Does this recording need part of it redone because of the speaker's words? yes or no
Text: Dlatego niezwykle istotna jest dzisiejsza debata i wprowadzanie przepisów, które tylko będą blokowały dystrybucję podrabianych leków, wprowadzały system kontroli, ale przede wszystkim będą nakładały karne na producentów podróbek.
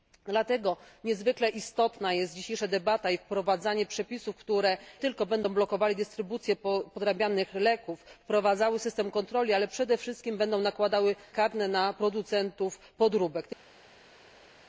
no